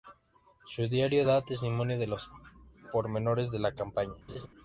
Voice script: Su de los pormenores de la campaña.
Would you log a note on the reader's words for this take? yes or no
yes